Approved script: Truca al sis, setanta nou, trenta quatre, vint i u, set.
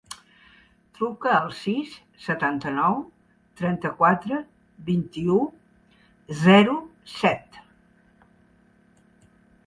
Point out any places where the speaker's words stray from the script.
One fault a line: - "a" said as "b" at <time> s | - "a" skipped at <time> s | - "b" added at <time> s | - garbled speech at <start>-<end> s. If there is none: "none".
- "zero" added at 6.4 s